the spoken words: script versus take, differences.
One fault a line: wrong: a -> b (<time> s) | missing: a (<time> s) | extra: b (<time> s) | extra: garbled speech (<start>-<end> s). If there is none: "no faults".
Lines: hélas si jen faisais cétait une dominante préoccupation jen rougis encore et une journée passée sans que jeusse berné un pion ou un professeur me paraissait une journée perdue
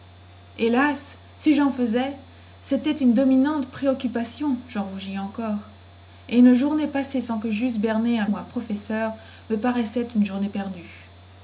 missing: pion (8.2 s)